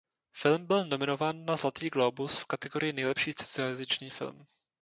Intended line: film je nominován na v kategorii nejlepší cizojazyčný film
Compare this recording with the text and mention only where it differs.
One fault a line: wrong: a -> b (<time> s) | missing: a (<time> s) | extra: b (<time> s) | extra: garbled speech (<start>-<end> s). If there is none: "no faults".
wrong: je -> byl (0.7 s)
extra: zlatý glóbus (1.6 s)